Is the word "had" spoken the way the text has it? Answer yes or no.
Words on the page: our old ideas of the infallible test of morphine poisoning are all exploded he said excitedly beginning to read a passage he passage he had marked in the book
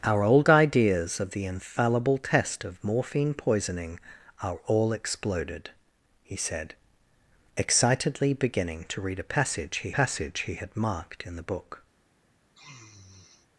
yes